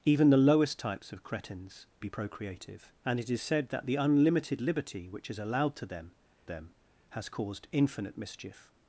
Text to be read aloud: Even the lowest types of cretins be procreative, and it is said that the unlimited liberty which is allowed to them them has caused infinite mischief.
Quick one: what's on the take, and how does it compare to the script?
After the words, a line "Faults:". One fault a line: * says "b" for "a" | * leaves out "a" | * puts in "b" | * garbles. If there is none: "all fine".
Even the lowest types of cretins be procreative, and it is said that the unlimited liberty which is allowed to them them has caused infinite mischief.
Faults:
all fine